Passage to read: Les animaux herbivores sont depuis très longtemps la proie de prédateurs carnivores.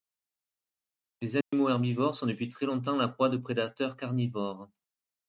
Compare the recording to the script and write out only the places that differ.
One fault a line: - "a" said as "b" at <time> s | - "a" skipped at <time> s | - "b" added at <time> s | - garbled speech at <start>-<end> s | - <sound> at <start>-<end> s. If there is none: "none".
- dropout at 1.4-1.5 s